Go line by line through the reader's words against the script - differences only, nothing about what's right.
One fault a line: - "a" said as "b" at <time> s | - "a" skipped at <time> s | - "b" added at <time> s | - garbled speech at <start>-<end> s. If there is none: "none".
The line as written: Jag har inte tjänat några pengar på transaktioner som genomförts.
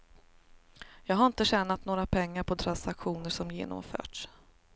none